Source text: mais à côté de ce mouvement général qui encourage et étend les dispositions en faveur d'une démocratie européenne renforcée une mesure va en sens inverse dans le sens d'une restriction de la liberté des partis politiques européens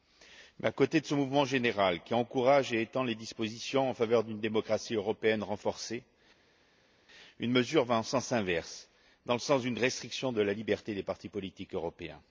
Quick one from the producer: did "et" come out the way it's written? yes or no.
yes